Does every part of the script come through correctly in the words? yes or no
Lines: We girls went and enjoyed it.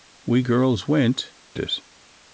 no